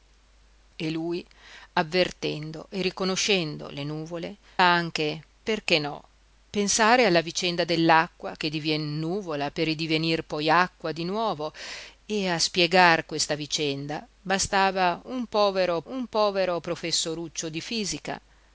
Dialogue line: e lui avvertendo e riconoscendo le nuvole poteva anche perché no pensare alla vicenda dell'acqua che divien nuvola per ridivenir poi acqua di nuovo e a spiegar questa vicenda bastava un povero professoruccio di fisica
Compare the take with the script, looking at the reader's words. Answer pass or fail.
fail